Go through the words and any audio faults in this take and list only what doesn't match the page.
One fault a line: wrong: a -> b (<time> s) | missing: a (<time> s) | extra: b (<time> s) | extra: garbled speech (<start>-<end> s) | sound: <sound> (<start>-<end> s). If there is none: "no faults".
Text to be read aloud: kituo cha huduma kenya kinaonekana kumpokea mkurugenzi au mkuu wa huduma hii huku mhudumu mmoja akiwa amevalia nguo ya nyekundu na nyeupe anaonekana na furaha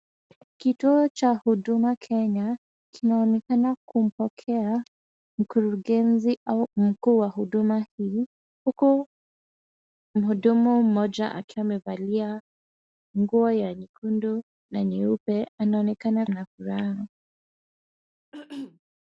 sound: throat clearing (18.3-18.8 s)